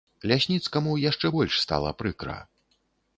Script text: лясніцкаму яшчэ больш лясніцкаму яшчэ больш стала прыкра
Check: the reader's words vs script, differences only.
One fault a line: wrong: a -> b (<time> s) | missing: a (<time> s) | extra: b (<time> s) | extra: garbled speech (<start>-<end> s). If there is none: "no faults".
missing: лясніцкаму яшчэ больш (1.6 s)